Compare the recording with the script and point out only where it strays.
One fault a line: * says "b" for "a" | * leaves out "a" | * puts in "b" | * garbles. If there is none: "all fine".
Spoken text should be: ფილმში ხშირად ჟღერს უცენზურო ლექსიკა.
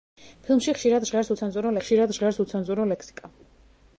* puts in "ხშირად ჟღერს უცენზურო"